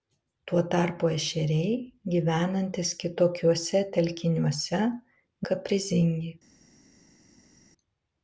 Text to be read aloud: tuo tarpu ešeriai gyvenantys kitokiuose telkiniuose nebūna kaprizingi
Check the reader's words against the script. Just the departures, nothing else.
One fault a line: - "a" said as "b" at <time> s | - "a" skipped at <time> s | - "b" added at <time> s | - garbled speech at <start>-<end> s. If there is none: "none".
- "nebūna" skipped at 4.8 s